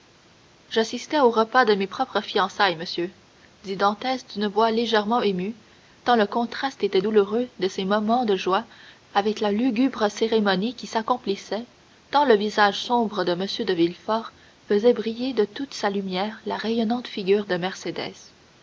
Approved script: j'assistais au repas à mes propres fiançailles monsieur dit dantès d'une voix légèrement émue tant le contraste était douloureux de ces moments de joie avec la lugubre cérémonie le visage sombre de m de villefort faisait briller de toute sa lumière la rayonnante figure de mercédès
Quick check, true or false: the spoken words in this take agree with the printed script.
false